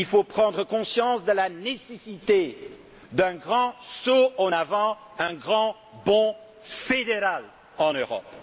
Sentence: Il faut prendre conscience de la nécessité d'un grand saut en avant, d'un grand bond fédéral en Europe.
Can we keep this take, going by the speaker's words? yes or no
yes